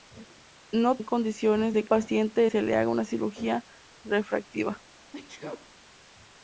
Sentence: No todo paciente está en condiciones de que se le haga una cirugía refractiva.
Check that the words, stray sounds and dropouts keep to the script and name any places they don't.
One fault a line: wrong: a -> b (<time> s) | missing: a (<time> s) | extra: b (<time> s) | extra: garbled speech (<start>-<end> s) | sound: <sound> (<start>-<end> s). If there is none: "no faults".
missing: todo paciente está (1.0 s)
wrong: que -> paciente (1.9 s)
sound: sneeze (5.1-5.7 s)